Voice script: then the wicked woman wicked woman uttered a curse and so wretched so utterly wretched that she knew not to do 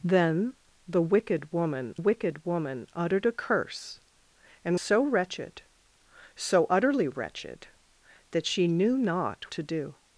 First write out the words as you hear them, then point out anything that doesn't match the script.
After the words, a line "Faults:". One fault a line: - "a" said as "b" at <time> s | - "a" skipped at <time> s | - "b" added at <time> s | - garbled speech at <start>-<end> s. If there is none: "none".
then the wicked woman wicked woman uttered a curse and so wretched so utterly wretched that she knew not to do
Faults:
none